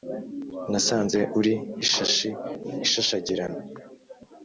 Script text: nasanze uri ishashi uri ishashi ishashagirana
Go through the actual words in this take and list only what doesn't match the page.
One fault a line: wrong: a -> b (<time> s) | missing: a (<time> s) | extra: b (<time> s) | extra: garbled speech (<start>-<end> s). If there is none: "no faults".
missing: uri ishashi (2.3 s)